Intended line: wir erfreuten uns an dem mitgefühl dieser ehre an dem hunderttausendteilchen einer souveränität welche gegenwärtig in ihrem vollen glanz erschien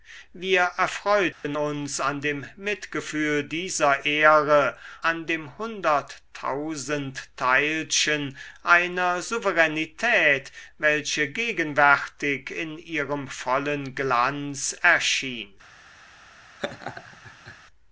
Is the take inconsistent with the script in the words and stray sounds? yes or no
yes